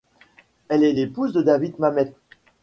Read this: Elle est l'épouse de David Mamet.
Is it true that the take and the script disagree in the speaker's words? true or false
false